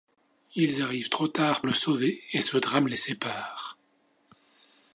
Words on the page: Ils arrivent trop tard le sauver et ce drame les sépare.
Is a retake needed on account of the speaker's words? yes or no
no